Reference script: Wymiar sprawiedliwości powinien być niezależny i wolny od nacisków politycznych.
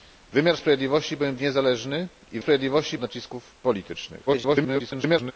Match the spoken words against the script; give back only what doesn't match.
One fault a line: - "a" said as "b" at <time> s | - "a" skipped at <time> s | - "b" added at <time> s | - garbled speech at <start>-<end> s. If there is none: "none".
- "być" skipped at 1.4 s
- "wolny" said as "sprawiedliwości" at 2.4 s
- garbled speech at 4.3-5.3 s